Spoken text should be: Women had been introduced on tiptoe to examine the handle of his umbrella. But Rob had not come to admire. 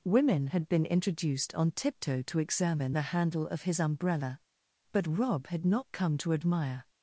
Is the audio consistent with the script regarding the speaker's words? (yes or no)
yes